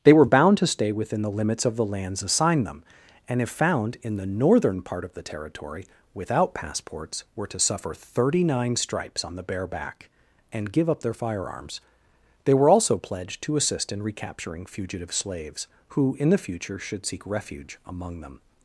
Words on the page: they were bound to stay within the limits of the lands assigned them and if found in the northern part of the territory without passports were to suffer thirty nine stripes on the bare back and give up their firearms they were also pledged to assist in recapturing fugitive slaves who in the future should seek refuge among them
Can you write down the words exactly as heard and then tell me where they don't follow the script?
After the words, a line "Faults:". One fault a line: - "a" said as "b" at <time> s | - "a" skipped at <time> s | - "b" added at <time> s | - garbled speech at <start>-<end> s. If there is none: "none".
they were bound to stay within the limits of the lands assigned them and if found in the northern part of the territory without passports were to suffer thirty nine stripes on the bare back and give up their firearms they were also pledged to assist in recapturing fugitive slaves who in the future should seek refuge among them
Faults:
none